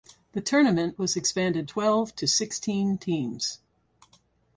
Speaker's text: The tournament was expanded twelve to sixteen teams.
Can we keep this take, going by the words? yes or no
yes